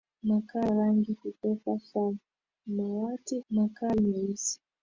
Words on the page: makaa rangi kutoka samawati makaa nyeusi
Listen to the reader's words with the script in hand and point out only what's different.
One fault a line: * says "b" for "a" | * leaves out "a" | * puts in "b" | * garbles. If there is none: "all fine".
all fine